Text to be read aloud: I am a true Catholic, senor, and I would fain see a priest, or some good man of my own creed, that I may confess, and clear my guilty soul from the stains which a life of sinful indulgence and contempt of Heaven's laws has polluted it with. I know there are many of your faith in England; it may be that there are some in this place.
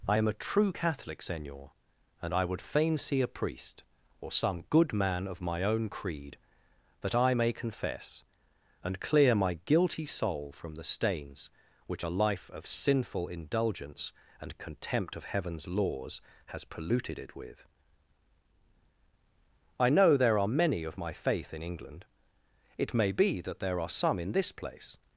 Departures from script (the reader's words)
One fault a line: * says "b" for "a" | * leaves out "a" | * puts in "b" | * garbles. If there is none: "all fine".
* says "my" for "your"